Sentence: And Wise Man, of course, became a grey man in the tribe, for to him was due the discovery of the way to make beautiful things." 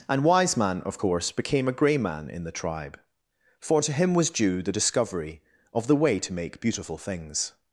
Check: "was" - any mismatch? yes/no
no